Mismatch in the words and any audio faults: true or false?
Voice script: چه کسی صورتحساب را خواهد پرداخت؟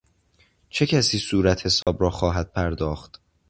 true